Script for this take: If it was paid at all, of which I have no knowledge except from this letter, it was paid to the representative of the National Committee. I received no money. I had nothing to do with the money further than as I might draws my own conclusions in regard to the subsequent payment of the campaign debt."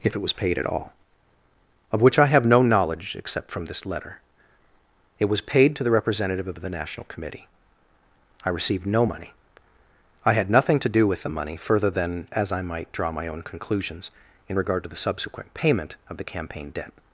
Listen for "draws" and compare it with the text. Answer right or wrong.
wrong